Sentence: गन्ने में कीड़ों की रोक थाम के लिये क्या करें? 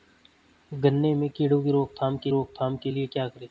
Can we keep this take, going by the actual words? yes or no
no